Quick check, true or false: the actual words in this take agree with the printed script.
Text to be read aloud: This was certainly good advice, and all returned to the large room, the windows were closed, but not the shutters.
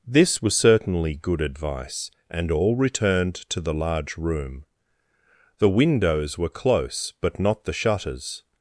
false